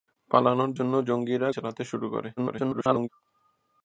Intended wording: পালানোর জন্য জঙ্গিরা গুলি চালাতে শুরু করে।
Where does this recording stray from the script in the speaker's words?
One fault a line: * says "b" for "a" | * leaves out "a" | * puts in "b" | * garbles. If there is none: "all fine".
* leaves out "গুলি"
* garbles